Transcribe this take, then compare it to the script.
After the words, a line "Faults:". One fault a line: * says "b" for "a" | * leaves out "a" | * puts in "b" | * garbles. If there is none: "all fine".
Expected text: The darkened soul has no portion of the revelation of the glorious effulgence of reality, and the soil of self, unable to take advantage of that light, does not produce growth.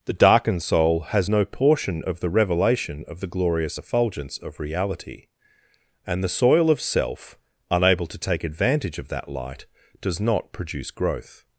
The darkened soul has no portion of the revelation of the glorious effulgence of reality, and the soil of self, unable to take advantage of that light, does not produce growth.
Faults:
all fine